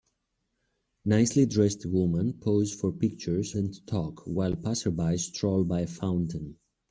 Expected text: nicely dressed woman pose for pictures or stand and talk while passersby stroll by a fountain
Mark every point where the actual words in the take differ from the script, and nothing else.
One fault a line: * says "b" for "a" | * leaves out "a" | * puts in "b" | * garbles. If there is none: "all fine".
* leaves out "or stand"